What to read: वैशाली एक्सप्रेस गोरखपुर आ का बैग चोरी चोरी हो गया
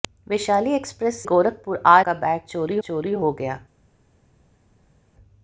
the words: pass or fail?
pass